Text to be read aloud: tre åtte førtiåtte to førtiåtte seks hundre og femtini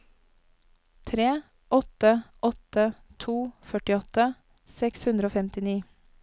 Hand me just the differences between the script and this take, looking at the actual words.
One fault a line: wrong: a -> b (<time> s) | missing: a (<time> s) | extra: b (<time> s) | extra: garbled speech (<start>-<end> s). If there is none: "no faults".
wrong: førtiåtte -> åtte (2.5 s)